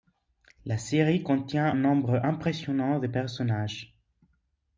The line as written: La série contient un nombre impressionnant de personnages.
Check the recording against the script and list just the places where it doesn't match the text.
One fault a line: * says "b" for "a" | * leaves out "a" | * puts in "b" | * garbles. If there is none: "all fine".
* leaves out "un"